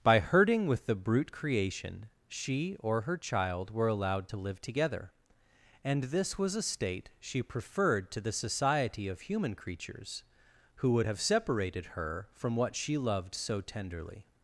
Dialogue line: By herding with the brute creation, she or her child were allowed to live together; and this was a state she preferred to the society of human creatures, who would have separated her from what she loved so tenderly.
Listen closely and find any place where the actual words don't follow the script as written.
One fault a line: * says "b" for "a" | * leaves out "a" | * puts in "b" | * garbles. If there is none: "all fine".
all fine